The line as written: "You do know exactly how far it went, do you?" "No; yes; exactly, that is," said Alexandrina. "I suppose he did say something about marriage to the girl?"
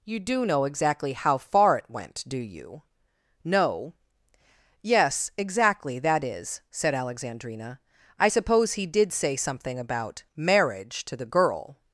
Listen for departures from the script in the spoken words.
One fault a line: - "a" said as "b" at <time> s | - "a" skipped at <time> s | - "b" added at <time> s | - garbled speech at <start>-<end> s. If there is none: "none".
none